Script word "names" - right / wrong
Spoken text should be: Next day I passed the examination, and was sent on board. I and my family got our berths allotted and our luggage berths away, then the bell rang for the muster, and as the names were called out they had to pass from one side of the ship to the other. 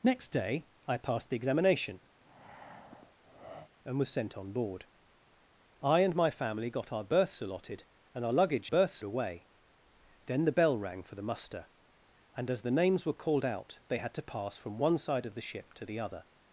right